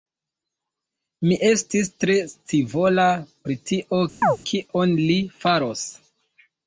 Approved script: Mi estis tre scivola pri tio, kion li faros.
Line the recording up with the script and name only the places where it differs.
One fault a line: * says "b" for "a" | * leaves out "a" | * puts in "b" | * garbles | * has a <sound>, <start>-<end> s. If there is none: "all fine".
* has a chirp, 4.2-4.4 s